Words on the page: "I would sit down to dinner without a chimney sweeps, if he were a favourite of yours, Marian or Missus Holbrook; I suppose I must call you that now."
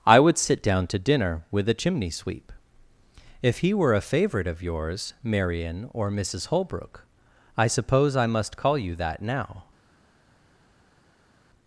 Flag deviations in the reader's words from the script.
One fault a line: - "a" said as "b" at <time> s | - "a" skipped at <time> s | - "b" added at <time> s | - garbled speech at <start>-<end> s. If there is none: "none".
- "without" said as "with" at 1.5 s
- "sweeps" said as "sweep" at 2.1 s